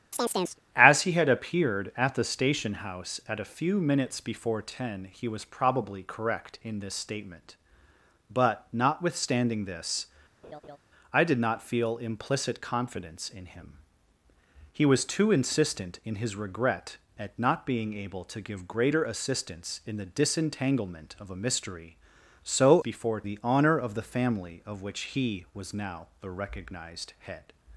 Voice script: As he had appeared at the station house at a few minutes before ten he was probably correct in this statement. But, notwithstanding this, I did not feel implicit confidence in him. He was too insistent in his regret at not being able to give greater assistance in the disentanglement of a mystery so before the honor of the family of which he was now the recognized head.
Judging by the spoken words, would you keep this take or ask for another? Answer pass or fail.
pass